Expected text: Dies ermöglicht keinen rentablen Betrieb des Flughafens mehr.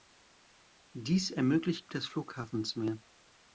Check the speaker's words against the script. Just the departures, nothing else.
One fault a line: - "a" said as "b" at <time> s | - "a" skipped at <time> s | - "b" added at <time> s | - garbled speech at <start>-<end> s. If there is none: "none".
- "keinen rentablen Betrieb" skipped at 1.9 s